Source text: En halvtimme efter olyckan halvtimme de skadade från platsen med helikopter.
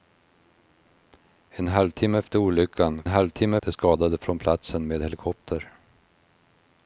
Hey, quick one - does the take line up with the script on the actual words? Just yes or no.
yes